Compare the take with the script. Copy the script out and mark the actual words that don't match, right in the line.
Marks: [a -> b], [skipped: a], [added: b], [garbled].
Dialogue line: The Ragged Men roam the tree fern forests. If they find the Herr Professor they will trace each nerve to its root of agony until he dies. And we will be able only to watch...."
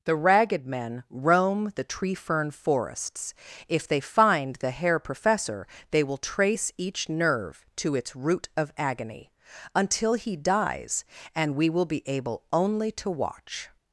The Ragged Men roam the tree fern forests. If they find the Herr Professor they will trace each nerve to its root of agony until he dies. And we will be able only to watch...."